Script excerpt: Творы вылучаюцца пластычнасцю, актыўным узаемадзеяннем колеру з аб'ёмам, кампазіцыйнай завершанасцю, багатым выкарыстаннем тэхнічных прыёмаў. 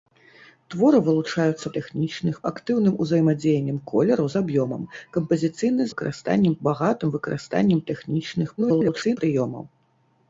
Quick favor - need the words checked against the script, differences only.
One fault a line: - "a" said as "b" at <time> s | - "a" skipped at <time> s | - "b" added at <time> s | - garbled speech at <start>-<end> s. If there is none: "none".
- "пластычнасцю" said as "тэхнічных" at 1.8 s
- "завершанасцю" said as "выкарыстаннем" at 5.9 s
- garbled speech at 8.6-9.2 s